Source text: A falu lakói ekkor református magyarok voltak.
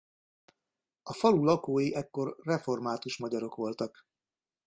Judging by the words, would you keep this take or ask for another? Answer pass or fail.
pass